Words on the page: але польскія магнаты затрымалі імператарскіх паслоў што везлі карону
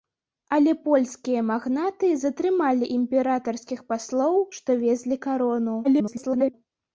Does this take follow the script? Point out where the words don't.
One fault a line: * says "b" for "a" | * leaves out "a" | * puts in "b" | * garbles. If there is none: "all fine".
* garbles